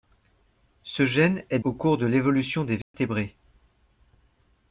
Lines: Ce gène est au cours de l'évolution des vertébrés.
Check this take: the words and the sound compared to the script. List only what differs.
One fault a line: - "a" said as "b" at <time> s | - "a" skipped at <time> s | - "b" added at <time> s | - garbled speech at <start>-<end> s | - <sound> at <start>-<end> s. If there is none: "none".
- dropout at 2.8-2.9 s